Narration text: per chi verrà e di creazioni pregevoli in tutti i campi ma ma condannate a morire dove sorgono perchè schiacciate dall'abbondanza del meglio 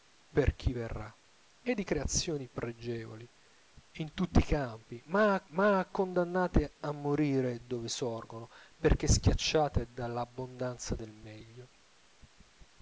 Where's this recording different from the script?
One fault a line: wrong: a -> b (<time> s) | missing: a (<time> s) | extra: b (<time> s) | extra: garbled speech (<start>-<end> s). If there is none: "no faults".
no faults